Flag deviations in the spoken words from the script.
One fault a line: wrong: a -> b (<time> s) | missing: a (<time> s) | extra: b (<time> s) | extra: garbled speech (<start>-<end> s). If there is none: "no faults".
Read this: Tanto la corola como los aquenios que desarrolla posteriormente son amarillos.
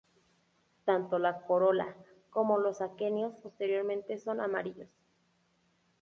missing: que desarrolla (3.4 s)